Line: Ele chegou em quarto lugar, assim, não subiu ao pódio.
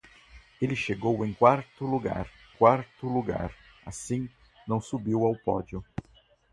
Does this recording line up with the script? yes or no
no